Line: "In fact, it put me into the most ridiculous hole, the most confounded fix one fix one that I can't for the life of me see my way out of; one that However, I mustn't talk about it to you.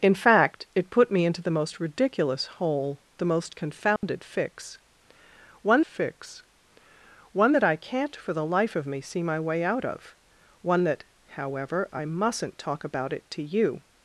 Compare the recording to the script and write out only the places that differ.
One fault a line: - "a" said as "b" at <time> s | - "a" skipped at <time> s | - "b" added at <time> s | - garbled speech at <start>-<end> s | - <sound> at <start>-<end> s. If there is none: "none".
- dropout at 4.0-4.0 s